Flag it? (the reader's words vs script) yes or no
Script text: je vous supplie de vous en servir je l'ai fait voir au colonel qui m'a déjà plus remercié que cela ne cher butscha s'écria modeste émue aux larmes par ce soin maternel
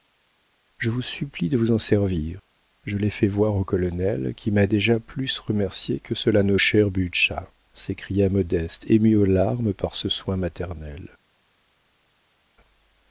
no